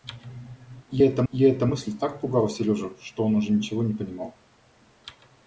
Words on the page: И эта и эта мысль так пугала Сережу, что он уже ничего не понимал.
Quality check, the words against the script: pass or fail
pass